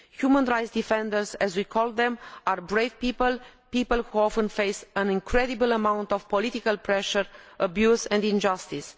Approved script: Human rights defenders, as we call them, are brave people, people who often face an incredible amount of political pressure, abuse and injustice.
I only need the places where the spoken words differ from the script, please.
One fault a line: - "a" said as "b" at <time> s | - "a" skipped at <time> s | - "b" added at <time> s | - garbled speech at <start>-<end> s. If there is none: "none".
none